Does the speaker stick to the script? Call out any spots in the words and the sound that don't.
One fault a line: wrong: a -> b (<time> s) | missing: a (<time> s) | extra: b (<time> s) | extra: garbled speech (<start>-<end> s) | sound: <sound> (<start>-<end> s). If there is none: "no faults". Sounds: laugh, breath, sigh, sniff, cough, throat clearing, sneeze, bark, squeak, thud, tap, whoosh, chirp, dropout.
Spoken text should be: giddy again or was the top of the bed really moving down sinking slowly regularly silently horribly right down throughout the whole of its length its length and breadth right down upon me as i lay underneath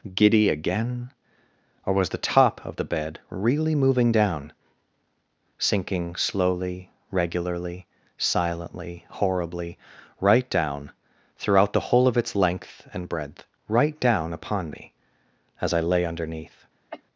missing: its length (12.9 s)
sound: cough (16.9-17.0 s)